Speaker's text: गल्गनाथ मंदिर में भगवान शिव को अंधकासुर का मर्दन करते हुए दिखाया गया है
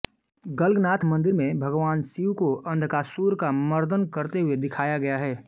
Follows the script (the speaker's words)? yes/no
yes